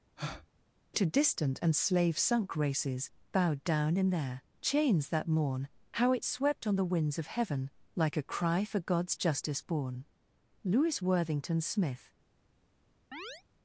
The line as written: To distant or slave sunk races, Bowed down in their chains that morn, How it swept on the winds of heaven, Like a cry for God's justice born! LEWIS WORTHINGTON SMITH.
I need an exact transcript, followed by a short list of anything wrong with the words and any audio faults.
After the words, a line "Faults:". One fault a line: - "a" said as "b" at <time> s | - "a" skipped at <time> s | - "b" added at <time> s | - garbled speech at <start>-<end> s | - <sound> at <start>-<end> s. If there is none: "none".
To distant and slave sunk races, Bowed down in their chains that morn, How it swept on the winds of heaven, Like a cry for God's justice born! LEWIS WORTHINGTON SMITH.
Faults:
- breath at 0.2-0.5 s
- "or" said as "and" at 1.6 s
- chirp at 13.1-13.4 s